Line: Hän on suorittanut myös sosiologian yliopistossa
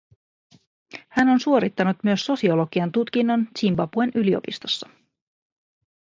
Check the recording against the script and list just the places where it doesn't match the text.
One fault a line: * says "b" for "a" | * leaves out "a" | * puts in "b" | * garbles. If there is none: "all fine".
* puts in "tutkinnon Zimbabwen"